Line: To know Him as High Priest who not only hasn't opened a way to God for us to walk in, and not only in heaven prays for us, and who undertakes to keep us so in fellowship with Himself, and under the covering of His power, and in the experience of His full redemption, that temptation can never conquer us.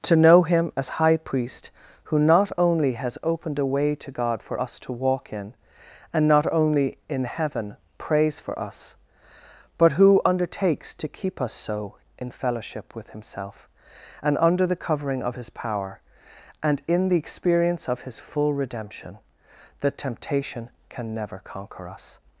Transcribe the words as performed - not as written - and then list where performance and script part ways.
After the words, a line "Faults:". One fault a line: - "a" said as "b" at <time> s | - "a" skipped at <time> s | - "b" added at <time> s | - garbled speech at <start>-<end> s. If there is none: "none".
To know Him as High Priest who not only has opened a way to God for us to walk in, and not only in heaven prays for us, but who undertakes to keep us so in fellowship with Himself, and under the covering of His power, and in the experience of His full redemption, that temptation can never conquer us.
Faults:
- "hasn't" said as "has" at 2.9 s
- "and" said as "but" at 9.8 s